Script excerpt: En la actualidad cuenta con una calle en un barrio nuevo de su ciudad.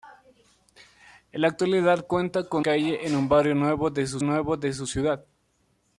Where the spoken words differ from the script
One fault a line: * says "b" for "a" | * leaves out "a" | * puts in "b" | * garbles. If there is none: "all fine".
* leaves out "una"
* puts in "nuevo de su"